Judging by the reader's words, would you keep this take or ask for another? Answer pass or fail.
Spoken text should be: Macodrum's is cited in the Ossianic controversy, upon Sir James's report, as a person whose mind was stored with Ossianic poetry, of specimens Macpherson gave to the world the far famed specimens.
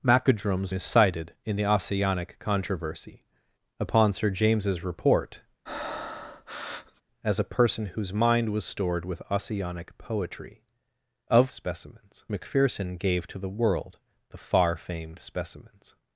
pass